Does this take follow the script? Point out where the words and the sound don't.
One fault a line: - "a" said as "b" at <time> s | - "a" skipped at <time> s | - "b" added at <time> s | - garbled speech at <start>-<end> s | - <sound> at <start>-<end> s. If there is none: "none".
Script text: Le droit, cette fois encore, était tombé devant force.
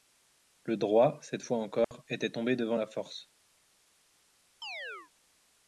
- dropout at 1.8-1.9 s
- "la" added at 2.8 s
- chirp at 4.6-5.1 s